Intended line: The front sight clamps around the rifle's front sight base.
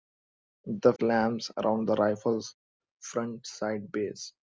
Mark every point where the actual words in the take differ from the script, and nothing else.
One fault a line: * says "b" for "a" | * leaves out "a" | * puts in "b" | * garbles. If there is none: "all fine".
* leaves out "front sight"